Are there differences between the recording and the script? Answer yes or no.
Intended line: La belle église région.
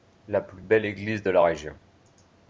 yes